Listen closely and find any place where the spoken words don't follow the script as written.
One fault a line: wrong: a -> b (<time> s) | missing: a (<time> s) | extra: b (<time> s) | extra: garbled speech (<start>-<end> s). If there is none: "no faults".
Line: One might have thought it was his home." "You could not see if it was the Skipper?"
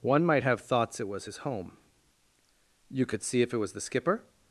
wrong: thought -> thoughts (0.6 s)
missing: not (3.2 s)